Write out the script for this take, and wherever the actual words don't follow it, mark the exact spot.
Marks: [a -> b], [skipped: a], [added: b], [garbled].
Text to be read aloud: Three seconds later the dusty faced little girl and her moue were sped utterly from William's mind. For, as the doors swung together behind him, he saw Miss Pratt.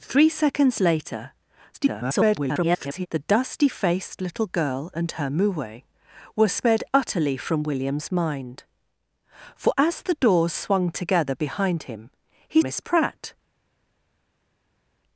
Three seconds later [garbled] the dusty faced little girl and her moue were sped utterly from William's mind. For, as the doors swung together behind him, he [skipped: saw] Miss Pratt.